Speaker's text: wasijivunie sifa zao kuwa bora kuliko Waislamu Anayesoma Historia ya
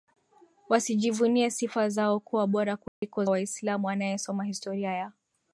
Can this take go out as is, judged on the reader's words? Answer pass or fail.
pass